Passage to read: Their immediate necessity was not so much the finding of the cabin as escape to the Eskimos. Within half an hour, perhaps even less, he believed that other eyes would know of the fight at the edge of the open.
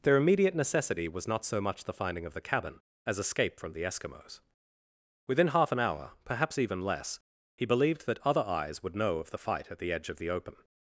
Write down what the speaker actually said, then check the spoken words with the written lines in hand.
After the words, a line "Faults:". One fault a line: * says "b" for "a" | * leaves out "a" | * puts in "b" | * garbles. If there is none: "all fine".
Their immediate necessity was not so much the finding of the cabin as escape from the Eskimos. Within half an hour, perhaps even less, he believed that other eyes would know of the fight at the edge of the open.
Faults:
* says "from" for "to"